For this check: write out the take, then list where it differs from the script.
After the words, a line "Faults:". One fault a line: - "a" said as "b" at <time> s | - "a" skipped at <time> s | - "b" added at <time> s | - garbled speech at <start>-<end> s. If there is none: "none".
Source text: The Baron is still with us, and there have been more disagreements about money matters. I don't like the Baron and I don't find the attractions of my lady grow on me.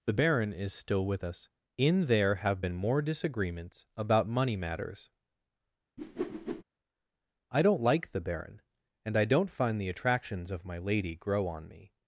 The Baron is still with us, in there have been more disagreements about money matters. I don't like the Baron and I don't find the attractions of my lady grow on me.
Faults:
- "and" said as "in" at 1.8 s